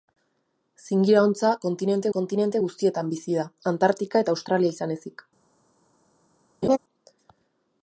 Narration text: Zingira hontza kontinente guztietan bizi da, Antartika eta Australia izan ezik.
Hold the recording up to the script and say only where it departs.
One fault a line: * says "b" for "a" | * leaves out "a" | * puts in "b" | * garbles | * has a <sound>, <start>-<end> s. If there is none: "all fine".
* puts in "kontinente"
* has a laugh, 6.6-6.8 s